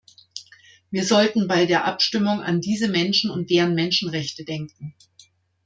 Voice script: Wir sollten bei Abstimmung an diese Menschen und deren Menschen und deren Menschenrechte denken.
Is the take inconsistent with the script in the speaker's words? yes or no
yes